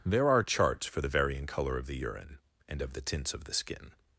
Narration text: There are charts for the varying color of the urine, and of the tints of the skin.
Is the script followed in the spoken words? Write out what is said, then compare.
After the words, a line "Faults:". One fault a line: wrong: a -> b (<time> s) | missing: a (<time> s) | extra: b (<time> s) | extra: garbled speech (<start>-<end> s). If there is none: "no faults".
There are charts for the varying color of the urine, and of the tints of the skin.
Faults:
no faults